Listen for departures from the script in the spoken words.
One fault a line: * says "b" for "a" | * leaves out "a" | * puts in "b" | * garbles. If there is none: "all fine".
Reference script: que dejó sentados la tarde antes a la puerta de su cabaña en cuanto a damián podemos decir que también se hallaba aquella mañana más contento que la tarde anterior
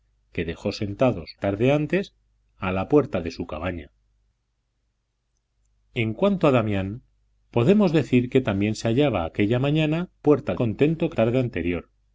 * leaves out "la"
* says "puerta" for "más"
* leaves out "la"